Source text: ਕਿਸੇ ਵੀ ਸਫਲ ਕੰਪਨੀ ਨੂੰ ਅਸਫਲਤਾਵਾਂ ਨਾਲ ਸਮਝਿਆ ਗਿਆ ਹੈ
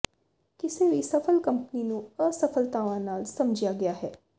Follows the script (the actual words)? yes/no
yes